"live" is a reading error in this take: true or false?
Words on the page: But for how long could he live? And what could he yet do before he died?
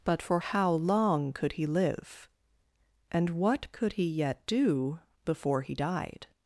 false